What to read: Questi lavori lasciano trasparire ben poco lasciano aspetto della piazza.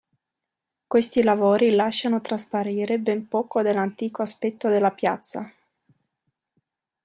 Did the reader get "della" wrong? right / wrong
right